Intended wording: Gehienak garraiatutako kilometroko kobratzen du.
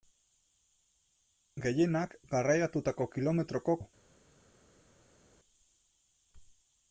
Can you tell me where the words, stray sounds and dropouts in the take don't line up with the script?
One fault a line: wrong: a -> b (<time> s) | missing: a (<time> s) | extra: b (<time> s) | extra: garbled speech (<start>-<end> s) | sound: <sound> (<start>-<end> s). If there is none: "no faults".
missing: kobratzen (3.8 s)